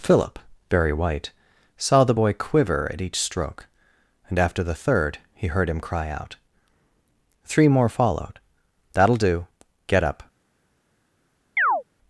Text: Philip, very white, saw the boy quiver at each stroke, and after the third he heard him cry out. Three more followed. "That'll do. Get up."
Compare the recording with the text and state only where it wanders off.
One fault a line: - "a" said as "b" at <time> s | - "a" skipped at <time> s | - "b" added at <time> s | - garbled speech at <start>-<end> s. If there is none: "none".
none